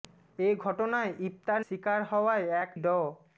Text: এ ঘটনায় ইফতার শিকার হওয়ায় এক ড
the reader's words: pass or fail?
pass